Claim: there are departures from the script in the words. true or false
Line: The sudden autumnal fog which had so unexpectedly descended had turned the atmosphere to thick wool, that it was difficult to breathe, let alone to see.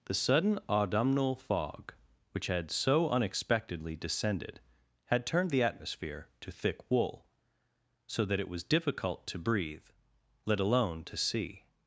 true